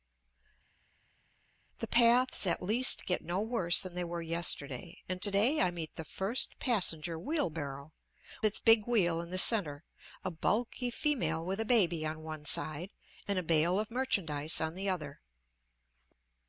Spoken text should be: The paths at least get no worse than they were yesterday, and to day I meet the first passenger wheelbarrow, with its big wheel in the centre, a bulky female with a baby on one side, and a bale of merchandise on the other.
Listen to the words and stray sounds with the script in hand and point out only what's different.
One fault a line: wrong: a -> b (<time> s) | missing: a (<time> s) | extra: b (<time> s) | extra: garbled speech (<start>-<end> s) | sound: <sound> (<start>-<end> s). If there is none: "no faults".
missing: with (7.9 s)